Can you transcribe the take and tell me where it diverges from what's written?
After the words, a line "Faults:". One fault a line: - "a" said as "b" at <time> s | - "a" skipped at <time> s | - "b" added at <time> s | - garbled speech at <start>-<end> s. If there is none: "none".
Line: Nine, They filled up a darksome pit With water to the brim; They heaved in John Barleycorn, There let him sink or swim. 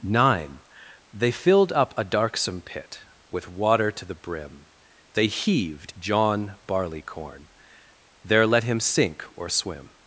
Nine, They filled up a darksome pit With water to the brim; They heaved John Barleycorn, There let him sink or swim.
Faults:
- "in" skipped at 5.9 s